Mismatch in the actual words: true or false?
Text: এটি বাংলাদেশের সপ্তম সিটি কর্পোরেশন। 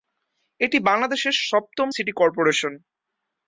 false